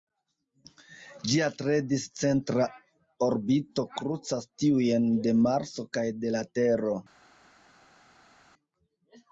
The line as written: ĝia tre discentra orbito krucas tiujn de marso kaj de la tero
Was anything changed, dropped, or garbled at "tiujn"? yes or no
no